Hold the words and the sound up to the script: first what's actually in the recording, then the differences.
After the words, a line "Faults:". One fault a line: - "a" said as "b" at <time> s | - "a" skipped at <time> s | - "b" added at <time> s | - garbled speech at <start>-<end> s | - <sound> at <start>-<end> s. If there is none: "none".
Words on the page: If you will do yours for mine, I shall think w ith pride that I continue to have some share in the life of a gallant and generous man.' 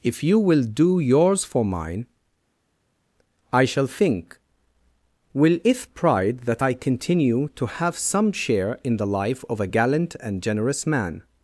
If you will do yours for mine, I shall think will it pride that I continue to have some share in the life of a gallant and generous man.'
Faults:
- "w ith" said as "will it" at 5.3 s